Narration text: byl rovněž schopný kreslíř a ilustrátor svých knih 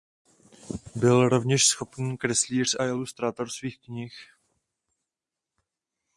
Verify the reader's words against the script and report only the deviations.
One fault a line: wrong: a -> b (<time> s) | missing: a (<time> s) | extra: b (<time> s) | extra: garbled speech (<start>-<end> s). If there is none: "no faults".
no faults